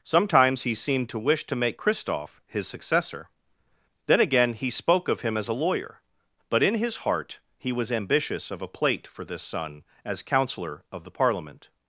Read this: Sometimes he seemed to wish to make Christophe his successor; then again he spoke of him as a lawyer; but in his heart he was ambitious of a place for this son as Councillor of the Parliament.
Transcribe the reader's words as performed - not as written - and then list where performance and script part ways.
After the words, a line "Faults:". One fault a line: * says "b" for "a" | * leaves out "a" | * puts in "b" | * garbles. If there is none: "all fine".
Sometimes he seemed to wish to make Christophe his successor; then again he spoke of him as a lawyer; but in his heart he was ambitious of a plate for this son as Councillor of the Parliament.
Faults:
* says "plate" for "place"